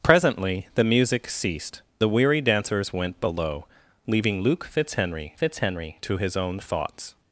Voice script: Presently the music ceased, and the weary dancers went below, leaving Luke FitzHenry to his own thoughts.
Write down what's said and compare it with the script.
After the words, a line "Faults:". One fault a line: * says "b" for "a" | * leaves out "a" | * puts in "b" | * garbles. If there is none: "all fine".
Presently the music ceased, the weary dancers went below, leaving Luke FitzHenry FitzHenry to his own thoughts.
Faults:
* leaves out "and"
* puts in "FitzHenry"